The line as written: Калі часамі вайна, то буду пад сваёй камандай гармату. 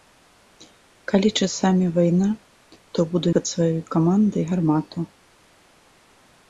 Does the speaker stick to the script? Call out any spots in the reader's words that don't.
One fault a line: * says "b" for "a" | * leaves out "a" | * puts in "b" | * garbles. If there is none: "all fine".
all fine